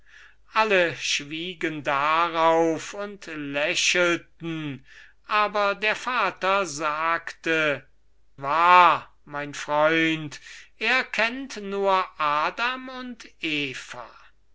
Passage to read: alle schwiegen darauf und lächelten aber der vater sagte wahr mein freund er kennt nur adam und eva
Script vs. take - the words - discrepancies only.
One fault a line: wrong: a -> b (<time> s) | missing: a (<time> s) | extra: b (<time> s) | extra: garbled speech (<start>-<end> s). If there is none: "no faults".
no faults